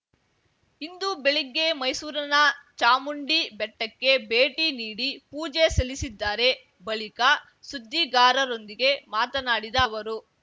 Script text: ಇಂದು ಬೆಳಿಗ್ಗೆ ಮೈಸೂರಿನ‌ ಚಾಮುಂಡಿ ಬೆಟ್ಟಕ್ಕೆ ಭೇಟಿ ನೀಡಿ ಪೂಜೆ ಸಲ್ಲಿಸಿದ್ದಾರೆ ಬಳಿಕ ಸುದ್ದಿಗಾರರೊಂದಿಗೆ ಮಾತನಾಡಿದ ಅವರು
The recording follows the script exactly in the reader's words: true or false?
true